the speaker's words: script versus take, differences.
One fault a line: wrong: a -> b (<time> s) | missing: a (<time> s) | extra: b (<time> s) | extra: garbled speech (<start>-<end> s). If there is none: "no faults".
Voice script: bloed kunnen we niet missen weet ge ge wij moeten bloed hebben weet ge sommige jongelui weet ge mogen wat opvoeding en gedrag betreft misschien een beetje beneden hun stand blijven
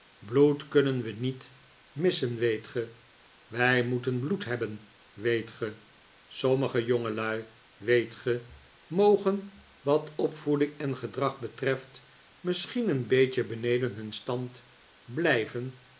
missing: ge (2.9 s)